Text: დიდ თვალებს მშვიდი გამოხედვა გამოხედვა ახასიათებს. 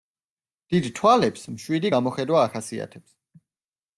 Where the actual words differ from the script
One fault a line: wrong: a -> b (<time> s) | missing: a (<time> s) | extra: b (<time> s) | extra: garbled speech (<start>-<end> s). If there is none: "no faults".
missing: გამოხედვა (2.4 s)